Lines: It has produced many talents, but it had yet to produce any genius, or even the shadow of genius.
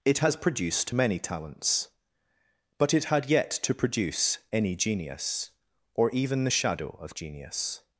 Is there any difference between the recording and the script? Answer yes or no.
no